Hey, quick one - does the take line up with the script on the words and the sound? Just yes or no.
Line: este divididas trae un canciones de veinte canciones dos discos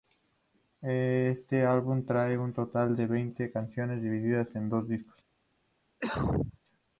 no